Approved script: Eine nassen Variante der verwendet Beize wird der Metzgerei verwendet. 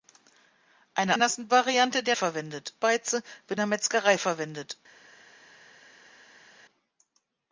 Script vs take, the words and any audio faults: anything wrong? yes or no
no